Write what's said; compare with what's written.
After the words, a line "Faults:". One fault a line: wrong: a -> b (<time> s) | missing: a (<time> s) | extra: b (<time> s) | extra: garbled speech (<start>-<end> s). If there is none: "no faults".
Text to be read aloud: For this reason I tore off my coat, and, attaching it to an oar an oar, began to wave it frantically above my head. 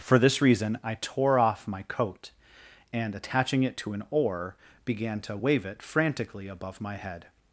For this reason I tore off my coat, and, attaching it to an oar, began to wave it frantically above my head.
Faults:
missing: an oar (4.5 s)